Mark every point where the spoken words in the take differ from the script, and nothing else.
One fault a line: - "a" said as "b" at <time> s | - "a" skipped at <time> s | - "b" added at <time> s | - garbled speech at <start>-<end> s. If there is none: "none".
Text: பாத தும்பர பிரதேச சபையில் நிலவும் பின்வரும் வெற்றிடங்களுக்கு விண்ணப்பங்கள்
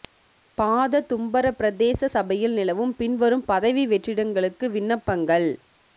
- "பதவி" added at 3.5 s